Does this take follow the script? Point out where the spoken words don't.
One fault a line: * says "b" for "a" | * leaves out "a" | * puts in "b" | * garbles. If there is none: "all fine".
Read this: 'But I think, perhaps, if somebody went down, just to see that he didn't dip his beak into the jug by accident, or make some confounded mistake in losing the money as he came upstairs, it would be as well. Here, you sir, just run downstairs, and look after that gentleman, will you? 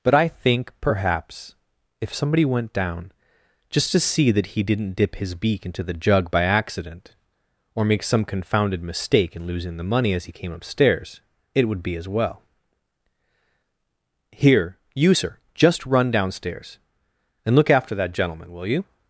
all fine